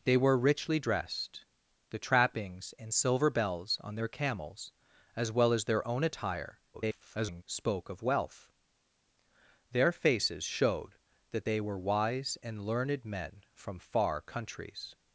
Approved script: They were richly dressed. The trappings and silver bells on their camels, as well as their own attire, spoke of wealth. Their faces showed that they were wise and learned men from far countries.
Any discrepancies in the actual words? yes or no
yes